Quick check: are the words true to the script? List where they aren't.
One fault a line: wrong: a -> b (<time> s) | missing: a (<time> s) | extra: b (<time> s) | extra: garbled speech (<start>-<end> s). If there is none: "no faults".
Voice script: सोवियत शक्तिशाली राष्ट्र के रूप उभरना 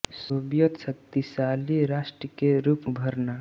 no faults